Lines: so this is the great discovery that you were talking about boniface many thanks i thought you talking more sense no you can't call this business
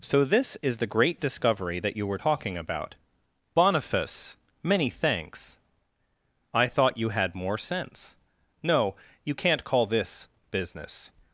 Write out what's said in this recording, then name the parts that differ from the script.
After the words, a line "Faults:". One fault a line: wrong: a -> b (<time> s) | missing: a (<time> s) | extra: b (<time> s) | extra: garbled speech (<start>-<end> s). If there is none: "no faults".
so this is the great discovery that you were talking about boniface many thanks i thought you had more sense no you can't call this business
Faults:
wrong: talking -> had (7.1 s)